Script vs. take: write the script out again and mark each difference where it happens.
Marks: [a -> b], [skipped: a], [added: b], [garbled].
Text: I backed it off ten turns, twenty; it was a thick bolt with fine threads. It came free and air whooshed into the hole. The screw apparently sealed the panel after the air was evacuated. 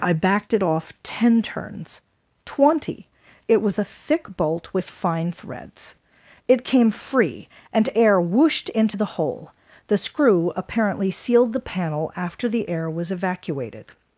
I backed it off ten turns, twenty; it was a thick bolt with fine threads. It came free and air whooshed into the hole. The screw apparently sealed the panel after the air was evacuated.